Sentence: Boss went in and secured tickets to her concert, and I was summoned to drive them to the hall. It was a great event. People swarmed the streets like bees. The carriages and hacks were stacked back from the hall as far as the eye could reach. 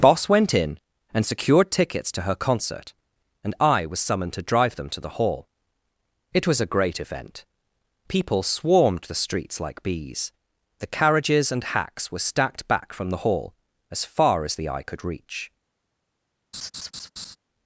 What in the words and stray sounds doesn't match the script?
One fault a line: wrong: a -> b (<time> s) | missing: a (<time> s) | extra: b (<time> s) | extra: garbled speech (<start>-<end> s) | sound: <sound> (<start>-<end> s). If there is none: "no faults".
sound: laugh (16.5-17.4 s)